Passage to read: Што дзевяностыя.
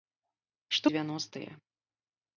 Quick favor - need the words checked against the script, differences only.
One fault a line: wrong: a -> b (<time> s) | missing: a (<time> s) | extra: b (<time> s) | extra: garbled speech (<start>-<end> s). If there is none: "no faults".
no faults